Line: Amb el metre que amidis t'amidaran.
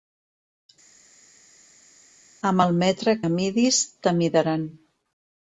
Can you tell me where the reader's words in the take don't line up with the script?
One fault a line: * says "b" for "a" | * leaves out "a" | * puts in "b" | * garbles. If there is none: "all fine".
* leaves out "que"